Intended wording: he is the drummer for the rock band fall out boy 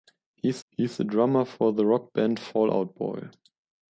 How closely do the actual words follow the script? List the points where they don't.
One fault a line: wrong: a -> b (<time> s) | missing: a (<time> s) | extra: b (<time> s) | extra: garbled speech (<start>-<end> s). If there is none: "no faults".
extra: he is (0.7 s)